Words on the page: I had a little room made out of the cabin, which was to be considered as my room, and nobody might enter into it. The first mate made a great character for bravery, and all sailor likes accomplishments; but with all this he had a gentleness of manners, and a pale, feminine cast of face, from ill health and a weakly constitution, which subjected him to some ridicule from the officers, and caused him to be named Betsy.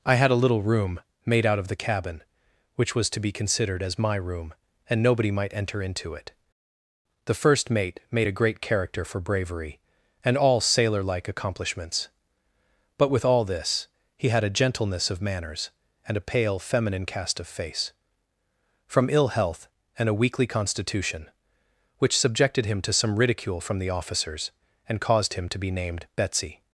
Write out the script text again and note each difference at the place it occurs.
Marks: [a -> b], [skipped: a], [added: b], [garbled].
I had a little room made out of the cabin, which was to be considered as my room, and nobody might enter into it. The first mate made a great character for bravery, and all sailor [likes -> like] accomplishments; but with all this he had a gentleness of manners, and a pale, feminine cast of face, from ill health and a weakly constitution, which subjected him to some ridicule from the officers, and caused him to be named Betsy.